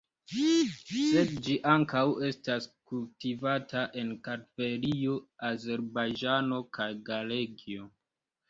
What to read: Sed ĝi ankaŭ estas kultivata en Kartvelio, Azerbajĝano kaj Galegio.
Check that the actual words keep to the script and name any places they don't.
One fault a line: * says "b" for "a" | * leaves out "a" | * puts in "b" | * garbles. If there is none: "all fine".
all fine